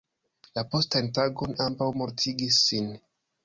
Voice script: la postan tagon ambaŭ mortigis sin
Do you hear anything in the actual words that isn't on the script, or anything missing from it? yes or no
no